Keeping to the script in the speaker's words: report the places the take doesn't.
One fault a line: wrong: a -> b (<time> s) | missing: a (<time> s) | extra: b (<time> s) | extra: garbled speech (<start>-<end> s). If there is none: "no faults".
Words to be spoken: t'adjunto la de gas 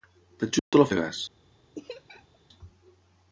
no faults